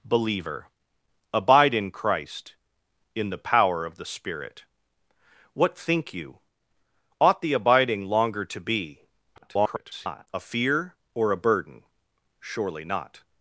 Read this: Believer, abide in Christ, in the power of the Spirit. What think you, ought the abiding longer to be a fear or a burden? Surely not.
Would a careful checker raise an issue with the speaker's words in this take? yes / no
yes